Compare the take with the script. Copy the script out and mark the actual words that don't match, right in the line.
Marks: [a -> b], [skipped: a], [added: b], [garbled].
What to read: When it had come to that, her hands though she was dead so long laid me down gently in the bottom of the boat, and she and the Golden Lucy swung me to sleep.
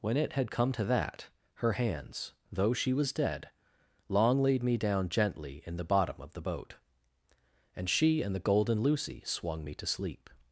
When it had come to that, her hands though she was dead [skipped: so] long laid me down gently in the bottom of the boat, and she and the Golden Lucy swung me to sleep.